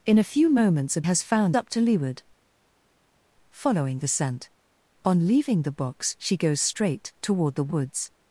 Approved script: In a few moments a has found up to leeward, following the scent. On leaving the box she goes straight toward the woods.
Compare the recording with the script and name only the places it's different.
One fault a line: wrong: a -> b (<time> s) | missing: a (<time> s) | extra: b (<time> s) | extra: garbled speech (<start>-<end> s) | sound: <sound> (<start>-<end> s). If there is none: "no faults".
no faults